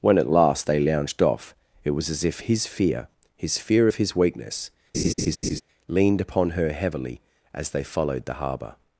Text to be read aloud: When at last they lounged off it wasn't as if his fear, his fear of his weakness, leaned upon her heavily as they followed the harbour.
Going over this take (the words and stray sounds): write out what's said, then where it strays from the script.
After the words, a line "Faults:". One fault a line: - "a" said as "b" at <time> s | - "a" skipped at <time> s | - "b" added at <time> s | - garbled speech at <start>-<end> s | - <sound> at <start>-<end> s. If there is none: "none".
When at last they lounged off it was as if his fear, his fear of his weakness, leaned upon her heavily as they followed the harbour.
Faults:
- "wasn't" said as "was" at 1.9 s
- laugh at 4.9-5.6 s